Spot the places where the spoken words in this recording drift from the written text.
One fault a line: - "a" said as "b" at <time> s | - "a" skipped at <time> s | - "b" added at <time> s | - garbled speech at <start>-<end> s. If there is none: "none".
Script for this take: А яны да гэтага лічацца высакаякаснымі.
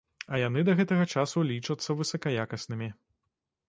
- "часу" added at 1.2 s